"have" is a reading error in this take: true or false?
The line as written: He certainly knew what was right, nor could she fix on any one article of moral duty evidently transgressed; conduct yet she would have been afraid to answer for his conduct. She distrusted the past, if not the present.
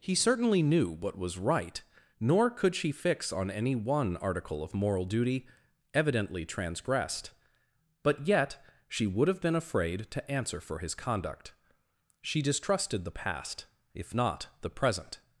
false